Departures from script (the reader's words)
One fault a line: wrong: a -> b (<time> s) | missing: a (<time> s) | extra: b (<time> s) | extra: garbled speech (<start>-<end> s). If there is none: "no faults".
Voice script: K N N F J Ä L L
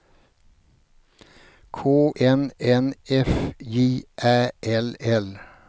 no faults